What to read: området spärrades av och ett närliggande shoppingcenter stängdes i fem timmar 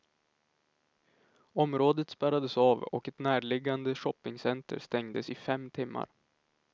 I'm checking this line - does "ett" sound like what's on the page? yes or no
yes